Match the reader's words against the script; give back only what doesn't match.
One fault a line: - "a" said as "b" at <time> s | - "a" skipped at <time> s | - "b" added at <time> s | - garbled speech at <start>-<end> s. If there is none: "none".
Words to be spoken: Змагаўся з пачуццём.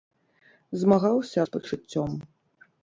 none